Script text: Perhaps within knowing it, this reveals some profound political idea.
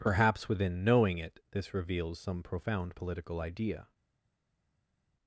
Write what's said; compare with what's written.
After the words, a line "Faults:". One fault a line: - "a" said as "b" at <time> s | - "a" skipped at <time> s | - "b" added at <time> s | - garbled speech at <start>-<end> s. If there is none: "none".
Perhaps within knowing it, this reveals some profound political idea.
Faults:
none